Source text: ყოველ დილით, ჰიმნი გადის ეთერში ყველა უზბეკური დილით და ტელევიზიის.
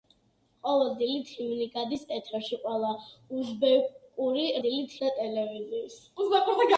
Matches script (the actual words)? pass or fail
pass